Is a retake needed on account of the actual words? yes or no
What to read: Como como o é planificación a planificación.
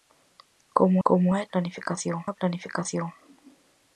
no